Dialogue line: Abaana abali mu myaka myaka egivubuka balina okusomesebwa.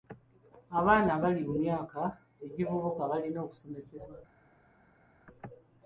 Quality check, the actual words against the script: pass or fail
fail